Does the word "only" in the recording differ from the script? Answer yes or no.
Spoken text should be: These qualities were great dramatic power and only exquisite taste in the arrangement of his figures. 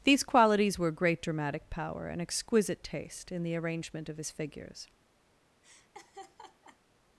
yes